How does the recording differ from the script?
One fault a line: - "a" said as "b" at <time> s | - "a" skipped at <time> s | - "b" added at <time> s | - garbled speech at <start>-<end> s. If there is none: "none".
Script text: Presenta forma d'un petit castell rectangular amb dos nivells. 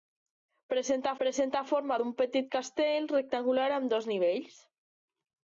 - "presenta" added at 1.2 s